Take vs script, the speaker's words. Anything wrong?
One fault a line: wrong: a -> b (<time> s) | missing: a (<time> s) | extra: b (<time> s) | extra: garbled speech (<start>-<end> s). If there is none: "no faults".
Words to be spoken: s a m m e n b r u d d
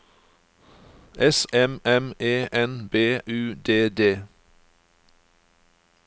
missing: a (1.4 s)
missing: r (3.2 s)